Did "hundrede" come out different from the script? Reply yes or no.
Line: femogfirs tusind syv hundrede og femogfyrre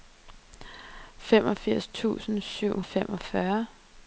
yes